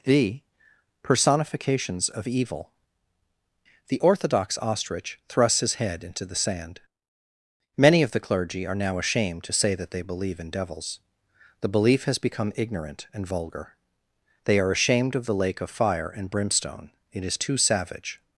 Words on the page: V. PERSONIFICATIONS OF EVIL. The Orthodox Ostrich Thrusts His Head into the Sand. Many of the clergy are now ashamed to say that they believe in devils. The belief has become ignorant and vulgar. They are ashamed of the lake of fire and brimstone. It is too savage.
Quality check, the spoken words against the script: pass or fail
pass